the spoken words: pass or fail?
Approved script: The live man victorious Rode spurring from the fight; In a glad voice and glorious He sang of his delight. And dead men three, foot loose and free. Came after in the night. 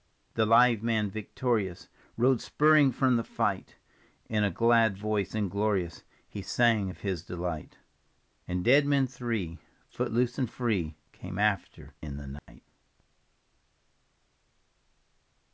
pass